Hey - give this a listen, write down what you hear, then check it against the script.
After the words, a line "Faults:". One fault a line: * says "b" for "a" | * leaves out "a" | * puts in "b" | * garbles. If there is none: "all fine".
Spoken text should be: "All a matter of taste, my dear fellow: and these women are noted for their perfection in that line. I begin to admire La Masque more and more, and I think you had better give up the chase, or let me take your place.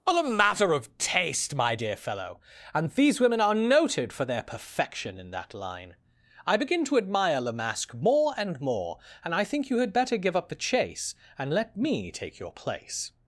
"All a matter of taste, my dear fellow: and these women are noted for their perfection in that line. I begin to admire La Masque more and more, and I think you had better give up the chase, and let me take your place.
Faults:
* says "and" for "or"